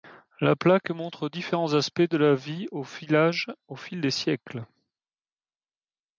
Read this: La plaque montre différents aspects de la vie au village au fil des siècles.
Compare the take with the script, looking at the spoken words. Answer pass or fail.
pass